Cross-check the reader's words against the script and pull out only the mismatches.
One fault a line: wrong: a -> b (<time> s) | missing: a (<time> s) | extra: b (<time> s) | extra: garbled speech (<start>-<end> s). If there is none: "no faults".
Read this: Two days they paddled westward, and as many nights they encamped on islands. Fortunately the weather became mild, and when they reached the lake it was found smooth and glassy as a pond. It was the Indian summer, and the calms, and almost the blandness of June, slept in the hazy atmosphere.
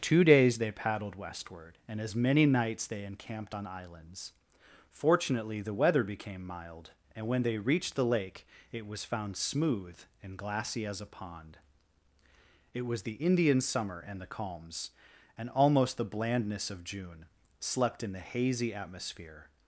no faults